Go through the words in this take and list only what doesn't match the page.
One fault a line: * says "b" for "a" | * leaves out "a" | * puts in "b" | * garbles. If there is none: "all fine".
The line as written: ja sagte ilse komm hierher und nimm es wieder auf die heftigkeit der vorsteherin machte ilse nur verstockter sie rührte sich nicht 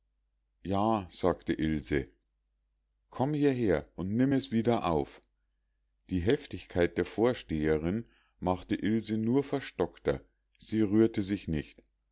all fine